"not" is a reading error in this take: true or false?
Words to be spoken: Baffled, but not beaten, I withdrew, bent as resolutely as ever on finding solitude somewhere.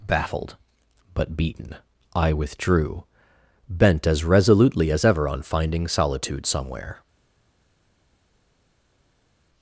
true